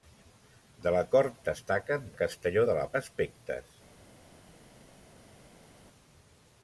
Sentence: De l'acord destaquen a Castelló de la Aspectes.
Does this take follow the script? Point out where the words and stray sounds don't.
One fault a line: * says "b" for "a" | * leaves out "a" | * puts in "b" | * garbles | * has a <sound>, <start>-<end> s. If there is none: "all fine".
all fine